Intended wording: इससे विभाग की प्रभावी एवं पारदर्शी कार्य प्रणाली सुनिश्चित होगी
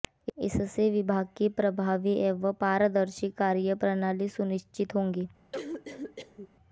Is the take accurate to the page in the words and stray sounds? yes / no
no